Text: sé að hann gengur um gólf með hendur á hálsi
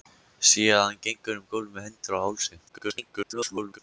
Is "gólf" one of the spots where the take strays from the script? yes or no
no